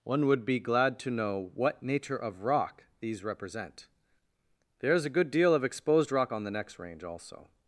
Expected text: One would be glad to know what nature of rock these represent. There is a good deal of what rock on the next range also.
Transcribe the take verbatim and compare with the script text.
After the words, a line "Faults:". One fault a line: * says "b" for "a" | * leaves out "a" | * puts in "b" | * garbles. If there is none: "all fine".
One would be glad to know what nature of rock these represent. There is a good deal of exposed rock on the next range also.
Faults:
* says "exposed" for "what"